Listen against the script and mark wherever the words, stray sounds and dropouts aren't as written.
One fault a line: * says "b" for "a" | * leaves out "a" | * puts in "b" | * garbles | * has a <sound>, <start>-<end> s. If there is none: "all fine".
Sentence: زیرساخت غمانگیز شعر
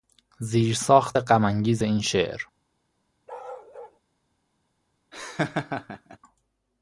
* puts in "این"
* has a bark, 3.3-4.0 s
* has a laugh, 5.1-6.2 s